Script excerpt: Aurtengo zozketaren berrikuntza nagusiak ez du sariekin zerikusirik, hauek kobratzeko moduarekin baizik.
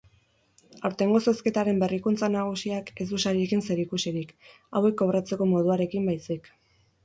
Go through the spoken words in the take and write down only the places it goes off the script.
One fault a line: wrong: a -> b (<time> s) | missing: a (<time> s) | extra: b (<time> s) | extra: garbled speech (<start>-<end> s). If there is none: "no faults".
no faults